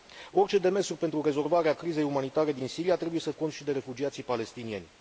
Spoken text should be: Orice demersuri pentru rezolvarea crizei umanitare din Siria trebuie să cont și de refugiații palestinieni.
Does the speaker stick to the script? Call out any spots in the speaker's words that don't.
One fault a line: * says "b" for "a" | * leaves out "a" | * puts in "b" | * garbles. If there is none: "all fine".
all fine